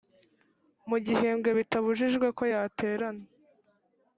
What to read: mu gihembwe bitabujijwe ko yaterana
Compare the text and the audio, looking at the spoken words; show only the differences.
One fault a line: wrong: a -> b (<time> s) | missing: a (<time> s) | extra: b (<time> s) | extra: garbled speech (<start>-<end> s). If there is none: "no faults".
no faults